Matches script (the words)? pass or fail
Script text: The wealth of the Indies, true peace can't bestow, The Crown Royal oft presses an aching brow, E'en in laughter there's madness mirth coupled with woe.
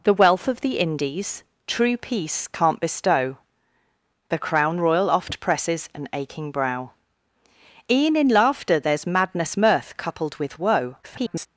fail